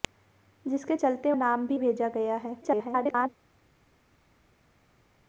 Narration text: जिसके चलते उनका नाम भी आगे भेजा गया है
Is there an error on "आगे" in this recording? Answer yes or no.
yes